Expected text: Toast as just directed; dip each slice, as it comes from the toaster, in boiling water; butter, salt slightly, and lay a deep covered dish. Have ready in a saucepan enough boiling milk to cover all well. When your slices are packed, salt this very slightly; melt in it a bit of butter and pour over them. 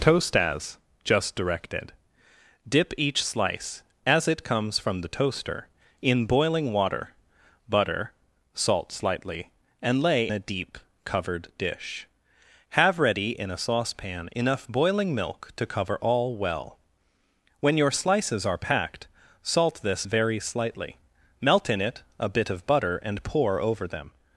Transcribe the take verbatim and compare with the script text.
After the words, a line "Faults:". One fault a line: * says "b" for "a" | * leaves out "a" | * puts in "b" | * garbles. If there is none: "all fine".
Toast as just directed; dip each slice, as it comes from the toaster, in boiling water; butter, salt slightly, and lay a deep covered dish. Have ready in a saucepan enough boiling milk to cover all well. When your slices are packed, salt this very slightly; melt in it a bit of butter and pour over them.
Faults:
all fine